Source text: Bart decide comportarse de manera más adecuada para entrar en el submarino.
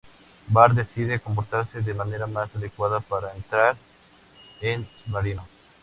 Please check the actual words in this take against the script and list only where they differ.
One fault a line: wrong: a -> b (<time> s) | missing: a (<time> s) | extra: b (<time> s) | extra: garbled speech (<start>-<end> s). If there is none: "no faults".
missing: el (4.9 s)